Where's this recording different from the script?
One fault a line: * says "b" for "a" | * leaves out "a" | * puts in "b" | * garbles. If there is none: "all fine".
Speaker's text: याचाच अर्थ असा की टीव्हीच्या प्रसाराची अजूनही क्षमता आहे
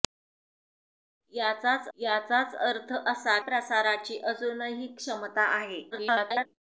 * puts in "याचाच"
* leaves out "की टीव्हीच्या"
* garbles